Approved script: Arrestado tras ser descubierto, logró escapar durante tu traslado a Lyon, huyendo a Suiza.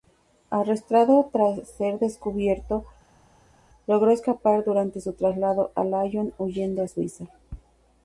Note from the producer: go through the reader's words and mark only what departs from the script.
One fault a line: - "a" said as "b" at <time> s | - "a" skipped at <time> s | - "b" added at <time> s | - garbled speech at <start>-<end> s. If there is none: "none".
- "tu" said as "su" at 5.0 s